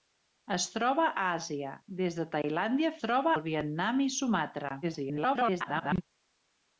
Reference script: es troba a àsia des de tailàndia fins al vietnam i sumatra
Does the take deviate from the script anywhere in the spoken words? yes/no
yes